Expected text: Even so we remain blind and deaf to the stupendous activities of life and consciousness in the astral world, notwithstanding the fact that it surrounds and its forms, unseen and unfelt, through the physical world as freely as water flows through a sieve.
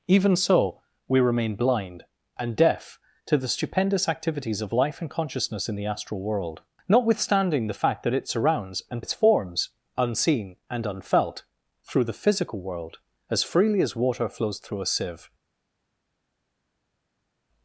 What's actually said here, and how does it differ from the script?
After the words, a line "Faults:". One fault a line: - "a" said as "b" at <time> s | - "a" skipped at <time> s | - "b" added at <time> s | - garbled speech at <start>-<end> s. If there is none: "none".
Even so we remain blind and deaf to the stupendous activities of life and consciousness in the astral world, notwithstanding the fact that it surrounds and its forms, unseen and unfelt, through the physical world as freely as water flows through a sieve.
Faults:
none